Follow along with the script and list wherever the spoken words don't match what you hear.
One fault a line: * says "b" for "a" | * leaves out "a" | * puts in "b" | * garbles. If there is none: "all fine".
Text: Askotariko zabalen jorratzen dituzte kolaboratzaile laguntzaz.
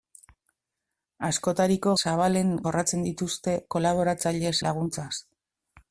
all fine